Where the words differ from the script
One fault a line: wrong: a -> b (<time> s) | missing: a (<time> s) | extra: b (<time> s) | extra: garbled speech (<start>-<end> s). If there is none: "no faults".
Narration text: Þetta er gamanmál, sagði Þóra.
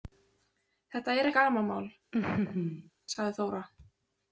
no faults